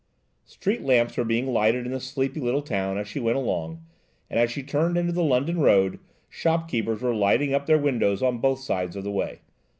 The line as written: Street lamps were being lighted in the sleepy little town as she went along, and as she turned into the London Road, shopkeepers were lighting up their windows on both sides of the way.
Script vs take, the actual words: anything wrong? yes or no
no